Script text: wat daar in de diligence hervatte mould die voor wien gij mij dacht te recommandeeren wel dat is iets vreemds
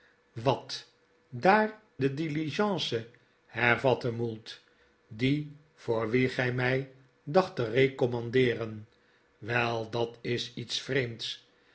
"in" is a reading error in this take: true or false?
true